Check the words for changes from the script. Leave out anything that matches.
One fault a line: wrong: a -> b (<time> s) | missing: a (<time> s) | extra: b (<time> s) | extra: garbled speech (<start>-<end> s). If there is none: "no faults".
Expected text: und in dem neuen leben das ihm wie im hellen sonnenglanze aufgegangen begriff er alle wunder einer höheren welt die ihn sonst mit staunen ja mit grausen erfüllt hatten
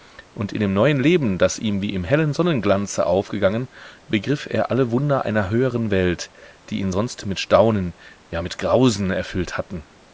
no faults